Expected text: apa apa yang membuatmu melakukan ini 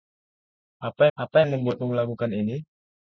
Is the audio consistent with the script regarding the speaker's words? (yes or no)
yes